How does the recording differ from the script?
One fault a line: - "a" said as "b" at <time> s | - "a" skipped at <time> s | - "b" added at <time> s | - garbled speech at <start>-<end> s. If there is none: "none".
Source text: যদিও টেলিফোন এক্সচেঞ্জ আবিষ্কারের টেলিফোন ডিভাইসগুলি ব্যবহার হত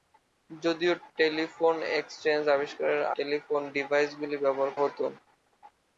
none